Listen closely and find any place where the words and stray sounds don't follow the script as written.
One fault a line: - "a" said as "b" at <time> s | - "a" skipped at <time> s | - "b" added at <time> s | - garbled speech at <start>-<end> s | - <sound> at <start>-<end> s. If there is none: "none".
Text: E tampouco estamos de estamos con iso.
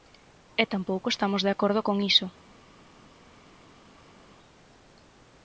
- "estamos" said as "acordo" at 1.6 s